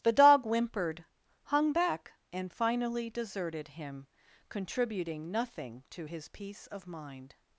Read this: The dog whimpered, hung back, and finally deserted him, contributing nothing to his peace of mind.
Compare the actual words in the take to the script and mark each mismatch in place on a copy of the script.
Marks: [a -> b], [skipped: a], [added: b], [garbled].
The dog whimpered, hung back, and finally deserted him, contributing nothing to his peace of mind.